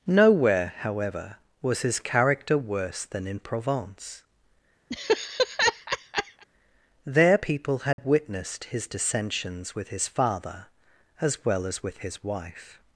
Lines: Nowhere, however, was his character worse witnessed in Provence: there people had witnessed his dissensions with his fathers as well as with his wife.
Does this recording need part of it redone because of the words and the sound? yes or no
yes